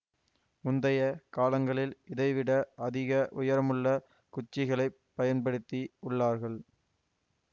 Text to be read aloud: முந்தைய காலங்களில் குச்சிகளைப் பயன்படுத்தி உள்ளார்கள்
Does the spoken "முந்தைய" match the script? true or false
true